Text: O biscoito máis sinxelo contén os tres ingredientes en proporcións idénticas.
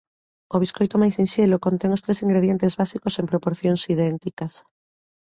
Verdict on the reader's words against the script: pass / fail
fail